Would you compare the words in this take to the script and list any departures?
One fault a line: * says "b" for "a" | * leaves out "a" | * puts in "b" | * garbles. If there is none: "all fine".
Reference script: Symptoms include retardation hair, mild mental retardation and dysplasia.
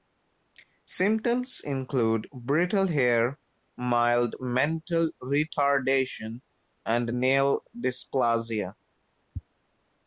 * says "brittle" for "retardation"
* puts in "nail"